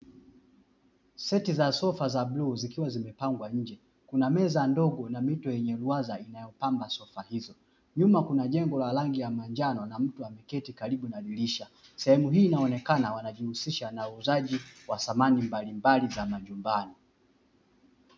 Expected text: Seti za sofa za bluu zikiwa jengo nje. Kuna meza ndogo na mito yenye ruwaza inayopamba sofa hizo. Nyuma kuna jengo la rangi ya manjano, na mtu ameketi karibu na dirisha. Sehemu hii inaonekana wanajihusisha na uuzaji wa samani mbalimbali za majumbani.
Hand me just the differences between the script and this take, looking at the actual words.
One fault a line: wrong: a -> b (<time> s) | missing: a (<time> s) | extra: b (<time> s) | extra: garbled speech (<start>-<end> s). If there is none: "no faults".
wrong: jengo -> zimepangwa (2.9 s)